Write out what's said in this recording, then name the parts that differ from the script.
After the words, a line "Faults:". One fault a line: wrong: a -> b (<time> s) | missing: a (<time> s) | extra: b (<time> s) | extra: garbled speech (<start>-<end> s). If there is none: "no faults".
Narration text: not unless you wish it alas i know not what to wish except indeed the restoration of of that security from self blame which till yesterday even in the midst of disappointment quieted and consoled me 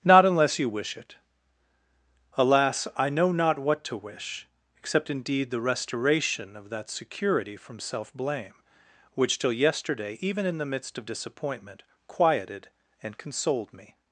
not unless you wish it alas i know not what to wish except indeed the restoration of that security from self blame which till yesterday even in the midst of disappointment quieted and consoled me
Faults:
missing: of (6.7 s)